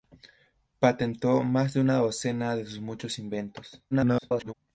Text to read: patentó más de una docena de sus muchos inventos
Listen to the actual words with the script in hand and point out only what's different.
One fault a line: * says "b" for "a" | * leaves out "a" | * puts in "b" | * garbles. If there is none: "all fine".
* garbles